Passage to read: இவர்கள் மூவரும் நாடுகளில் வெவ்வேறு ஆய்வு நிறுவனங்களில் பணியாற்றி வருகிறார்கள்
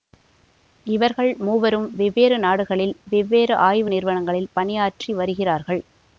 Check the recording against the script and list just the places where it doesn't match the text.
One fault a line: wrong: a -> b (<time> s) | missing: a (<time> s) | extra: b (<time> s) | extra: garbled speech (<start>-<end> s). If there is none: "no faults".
extra: வெவ்வேறு (1.9 s)